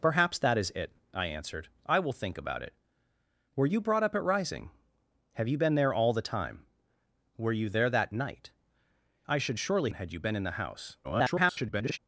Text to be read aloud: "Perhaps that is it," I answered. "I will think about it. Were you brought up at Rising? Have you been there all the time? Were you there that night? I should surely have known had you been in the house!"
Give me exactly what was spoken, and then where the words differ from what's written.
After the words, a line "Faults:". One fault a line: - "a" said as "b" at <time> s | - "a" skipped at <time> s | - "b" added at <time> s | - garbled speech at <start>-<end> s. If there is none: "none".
"Perhaps that is it," I answered. "I will think about it. Were you brought up at Rising? Have you been there all the time? Were you there that night? I should surely had you been in the house!" [garbled]
Faults:
- "have known" skipped at 9.9 s
- garbled speech at 11.0-12.0 s